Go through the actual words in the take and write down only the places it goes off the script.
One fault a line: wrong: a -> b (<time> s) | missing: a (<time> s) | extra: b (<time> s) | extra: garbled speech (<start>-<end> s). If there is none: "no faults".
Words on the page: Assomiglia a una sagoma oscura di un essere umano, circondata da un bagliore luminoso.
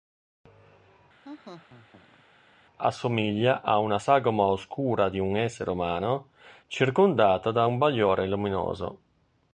no faults